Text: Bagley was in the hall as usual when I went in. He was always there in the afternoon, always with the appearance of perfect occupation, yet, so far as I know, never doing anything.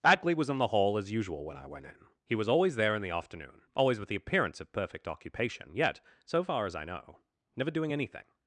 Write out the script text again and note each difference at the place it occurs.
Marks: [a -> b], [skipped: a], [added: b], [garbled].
Bagley was in the hall as usual when I went in. He was always there in the afternoon, always with the appearance of perfect occupation, yet, so far as I know, never doing anything.